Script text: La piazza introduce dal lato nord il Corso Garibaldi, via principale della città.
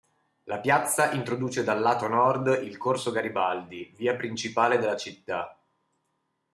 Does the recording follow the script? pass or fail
pass